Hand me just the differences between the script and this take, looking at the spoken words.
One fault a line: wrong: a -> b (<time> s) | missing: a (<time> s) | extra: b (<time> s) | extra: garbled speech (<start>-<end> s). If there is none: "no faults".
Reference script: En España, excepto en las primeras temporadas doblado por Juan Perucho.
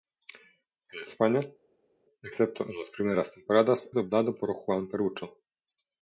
no faults